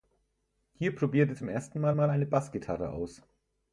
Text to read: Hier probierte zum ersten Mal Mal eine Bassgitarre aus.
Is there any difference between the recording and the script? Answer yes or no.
no